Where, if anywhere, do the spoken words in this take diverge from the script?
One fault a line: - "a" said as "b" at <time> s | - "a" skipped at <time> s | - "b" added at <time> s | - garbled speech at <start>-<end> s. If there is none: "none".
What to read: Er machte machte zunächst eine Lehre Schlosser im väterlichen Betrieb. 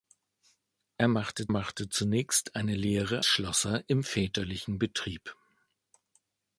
none